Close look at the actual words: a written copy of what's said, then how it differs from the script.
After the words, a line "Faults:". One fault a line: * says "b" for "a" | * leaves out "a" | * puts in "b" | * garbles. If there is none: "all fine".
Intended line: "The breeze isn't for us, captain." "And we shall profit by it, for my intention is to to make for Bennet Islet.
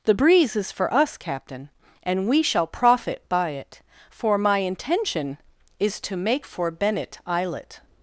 "The breeze is for us, captain." "And we shall profit by it, for my intention is to make for Bennet Islet.
Faults:
* says "is" for "isn't"
* leaves out "to"